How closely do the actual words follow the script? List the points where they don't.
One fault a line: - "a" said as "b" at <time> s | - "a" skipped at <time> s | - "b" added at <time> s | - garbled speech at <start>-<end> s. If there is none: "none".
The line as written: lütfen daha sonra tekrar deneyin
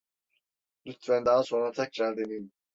none